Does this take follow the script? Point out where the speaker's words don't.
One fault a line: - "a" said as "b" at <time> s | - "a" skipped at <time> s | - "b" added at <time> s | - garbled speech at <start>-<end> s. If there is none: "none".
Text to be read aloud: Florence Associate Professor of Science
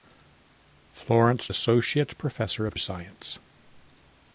none